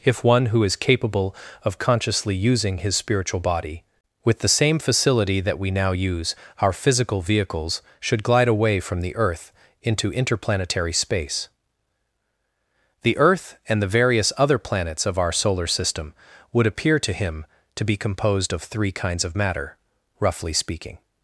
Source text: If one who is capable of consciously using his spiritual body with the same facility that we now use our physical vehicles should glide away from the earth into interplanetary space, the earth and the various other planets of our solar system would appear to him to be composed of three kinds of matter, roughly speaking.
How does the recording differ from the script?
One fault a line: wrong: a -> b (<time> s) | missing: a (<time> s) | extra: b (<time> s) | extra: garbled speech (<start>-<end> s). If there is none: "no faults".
no faults